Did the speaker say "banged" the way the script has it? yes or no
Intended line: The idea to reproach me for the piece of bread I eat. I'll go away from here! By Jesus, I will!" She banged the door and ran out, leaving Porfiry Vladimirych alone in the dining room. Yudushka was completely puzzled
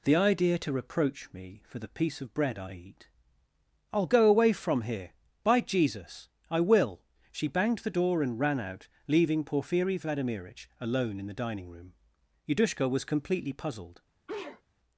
yes